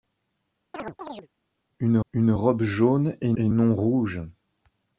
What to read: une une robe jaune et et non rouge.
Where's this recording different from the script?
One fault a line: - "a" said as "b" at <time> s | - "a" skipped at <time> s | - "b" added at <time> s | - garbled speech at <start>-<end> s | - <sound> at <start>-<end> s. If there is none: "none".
- chirp at 0.7-1.3 s